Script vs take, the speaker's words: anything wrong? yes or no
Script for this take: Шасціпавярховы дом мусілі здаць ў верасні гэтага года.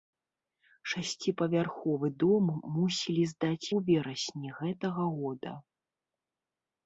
no